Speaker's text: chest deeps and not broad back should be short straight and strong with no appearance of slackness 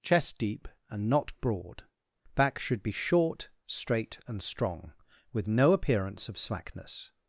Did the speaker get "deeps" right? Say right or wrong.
wrong